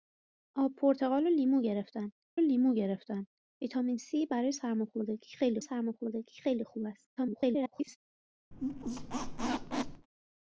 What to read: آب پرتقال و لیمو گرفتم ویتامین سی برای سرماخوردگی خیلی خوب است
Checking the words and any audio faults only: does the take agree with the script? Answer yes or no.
no